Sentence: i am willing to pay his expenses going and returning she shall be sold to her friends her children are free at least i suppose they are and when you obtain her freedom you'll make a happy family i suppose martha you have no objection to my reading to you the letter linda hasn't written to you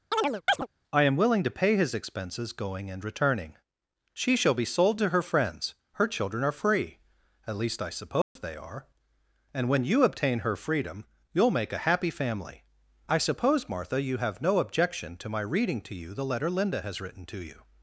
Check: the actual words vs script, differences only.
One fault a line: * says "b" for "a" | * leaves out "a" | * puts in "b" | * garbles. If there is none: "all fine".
* says "has" for "hasn't"